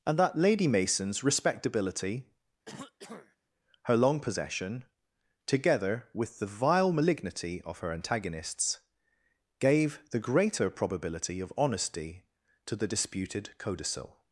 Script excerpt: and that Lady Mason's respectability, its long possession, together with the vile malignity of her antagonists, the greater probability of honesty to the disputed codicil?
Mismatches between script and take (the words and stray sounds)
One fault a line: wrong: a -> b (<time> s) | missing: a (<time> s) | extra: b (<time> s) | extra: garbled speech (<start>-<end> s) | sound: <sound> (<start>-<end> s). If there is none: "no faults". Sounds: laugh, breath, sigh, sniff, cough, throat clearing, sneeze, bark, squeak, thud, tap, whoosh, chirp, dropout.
sound: throat clearing (2.6-3.4 s)
wrong: its -> her (3.8 s)
extra: gave (9.6 s)